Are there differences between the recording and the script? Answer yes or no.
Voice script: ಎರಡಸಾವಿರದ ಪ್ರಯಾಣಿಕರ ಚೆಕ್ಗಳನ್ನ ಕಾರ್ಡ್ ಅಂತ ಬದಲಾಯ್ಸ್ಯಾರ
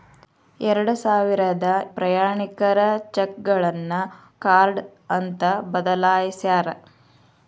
no